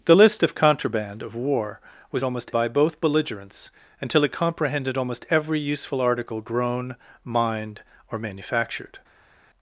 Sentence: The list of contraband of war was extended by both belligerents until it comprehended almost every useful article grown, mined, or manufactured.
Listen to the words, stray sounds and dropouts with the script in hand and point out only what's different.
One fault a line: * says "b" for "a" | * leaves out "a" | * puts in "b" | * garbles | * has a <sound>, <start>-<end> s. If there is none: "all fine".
* says "almost" for "extended"